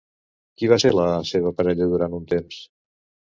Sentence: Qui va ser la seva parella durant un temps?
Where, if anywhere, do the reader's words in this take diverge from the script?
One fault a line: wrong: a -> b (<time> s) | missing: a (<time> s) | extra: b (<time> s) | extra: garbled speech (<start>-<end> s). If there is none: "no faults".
no faults